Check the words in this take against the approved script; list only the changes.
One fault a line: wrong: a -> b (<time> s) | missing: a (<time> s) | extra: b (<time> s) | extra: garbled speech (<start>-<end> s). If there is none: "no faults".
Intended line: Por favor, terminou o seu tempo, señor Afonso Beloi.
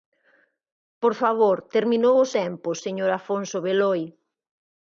missing: seu (2.3 s)